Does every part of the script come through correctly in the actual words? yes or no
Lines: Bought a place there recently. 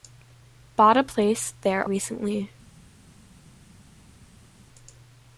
yes